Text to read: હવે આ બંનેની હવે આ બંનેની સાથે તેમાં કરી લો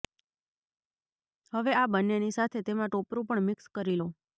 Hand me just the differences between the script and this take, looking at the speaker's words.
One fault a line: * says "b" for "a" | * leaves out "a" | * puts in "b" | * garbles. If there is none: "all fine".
* says "સાથે તેમાં ટોપરું પણ મિક્સ" for "હવે આ બંનેની સાથે તેમાં"